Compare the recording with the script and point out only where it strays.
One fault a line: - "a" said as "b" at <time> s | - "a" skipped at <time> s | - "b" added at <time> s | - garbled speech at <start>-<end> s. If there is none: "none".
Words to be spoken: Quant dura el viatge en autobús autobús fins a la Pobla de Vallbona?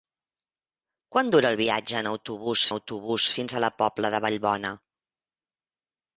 none